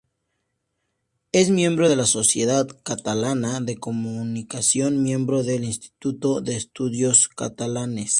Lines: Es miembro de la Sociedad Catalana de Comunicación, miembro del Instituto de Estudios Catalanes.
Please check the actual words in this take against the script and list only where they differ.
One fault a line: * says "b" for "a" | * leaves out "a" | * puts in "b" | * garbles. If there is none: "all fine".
all fine